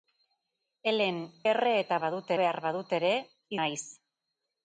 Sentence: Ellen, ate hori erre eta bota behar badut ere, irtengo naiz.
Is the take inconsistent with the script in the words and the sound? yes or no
yes